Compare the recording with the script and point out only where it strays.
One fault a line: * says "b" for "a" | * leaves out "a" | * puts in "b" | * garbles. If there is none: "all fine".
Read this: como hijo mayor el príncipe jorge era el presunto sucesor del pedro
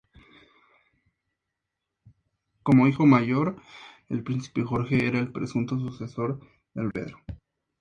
all fine